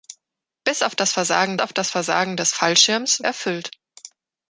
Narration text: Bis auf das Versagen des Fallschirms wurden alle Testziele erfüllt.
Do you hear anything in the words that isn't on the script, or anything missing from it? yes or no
yes